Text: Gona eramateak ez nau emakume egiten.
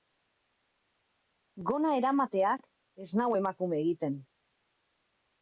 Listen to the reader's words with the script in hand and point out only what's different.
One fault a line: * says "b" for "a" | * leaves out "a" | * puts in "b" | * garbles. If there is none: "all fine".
all fine